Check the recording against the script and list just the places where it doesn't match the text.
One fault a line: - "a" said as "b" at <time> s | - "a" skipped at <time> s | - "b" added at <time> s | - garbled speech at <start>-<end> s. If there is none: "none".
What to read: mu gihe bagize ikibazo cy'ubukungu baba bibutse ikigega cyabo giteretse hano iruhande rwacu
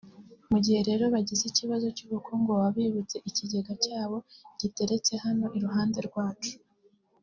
- "rero" added at 0.9 s